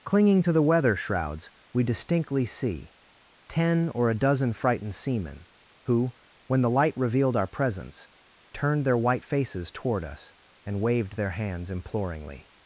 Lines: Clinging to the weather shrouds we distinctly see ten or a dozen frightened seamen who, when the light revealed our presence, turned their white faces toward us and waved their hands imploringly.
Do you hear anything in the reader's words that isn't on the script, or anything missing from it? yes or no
no